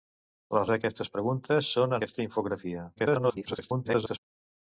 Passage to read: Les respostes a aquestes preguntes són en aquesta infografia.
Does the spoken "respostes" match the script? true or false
false